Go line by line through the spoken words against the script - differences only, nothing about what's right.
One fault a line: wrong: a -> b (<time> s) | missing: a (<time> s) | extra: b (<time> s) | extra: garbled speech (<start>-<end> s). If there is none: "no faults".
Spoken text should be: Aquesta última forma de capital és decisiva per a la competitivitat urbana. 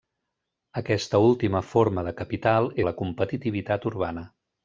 missing: és decisiva per (2.7 s)